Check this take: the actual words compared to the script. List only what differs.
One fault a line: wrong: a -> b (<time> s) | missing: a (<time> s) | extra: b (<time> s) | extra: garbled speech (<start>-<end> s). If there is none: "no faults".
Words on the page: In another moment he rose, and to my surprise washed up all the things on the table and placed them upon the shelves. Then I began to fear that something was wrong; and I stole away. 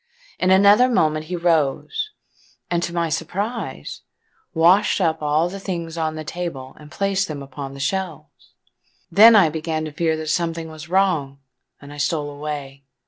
no faults